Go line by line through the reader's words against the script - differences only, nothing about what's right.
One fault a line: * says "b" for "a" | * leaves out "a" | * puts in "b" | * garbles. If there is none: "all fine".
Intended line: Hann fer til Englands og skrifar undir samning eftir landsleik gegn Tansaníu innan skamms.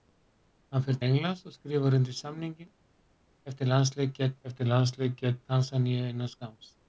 * leaves out "til"
* puts in "eftir landsleik gegn"